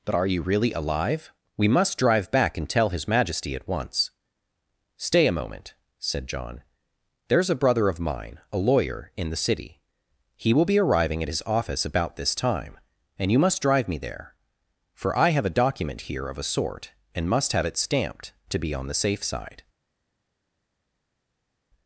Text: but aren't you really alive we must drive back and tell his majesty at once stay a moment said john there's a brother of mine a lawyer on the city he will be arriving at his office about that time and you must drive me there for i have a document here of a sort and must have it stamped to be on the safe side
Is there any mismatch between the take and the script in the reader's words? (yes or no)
yes